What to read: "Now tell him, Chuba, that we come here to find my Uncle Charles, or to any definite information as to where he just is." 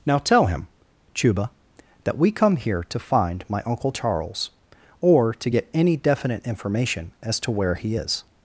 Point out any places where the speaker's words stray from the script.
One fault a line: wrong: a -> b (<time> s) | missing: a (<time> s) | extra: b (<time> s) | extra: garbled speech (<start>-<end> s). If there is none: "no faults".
extra: get (5.5 s)
missing: just (7.9 s)